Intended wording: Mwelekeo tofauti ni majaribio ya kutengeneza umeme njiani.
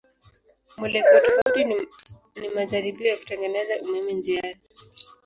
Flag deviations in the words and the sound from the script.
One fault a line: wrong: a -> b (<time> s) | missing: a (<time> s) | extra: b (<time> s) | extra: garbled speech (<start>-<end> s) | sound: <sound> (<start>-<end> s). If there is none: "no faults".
sound: dropout (1.4-1.5 s)